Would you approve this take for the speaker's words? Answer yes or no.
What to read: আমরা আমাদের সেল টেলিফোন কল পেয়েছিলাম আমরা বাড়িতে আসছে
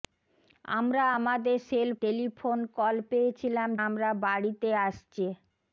yes